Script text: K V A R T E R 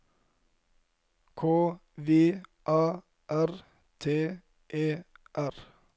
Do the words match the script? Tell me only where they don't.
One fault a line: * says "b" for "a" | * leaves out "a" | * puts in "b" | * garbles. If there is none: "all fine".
all fine